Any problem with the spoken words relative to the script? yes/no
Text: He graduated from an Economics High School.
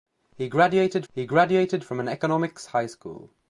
yes